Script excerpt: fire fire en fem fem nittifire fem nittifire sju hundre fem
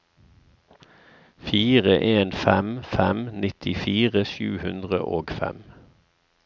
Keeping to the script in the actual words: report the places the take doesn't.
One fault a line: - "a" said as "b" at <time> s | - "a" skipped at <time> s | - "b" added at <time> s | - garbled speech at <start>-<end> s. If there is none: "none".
- "fire" skipped at 2.0 s
- "fem nittifire" skipped at 4.2 s
- "og" added at 5.2 s